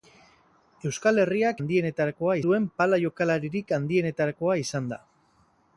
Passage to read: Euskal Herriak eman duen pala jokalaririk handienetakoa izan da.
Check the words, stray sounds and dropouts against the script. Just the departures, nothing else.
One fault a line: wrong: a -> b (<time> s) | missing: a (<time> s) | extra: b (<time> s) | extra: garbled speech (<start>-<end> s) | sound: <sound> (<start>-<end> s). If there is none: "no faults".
wrong: eman -> handienetakoa (1.6 s)